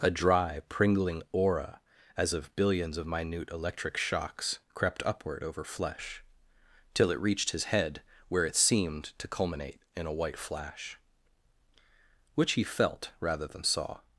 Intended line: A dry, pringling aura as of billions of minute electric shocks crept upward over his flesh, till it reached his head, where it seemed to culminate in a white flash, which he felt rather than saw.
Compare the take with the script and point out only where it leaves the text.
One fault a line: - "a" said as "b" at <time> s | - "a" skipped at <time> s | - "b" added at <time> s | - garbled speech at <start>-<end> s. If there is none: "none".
- "his" skipped at 5.6 s